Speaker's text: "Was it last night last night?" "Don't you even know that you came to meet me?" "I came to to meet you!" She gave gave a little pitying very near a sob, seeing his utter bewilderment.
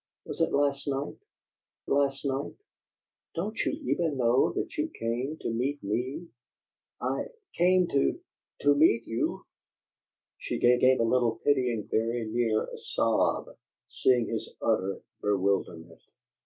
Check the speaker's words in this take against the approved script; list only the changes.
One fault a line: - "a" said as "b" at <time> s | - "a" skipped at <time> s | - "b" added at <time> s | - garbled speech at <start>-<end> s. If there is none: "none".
none